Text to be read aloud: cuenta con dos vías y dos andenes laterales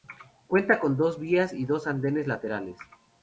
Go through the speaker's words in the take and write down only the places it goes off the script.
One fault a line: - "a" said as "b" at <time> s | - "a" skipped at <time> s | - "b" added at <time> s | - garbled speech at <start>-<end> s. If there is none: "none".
none